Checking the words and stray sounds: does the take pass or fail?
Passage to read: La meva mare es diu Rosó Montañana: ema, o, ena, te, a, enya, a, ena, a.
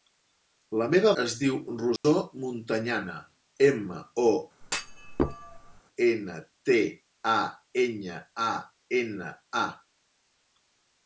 fail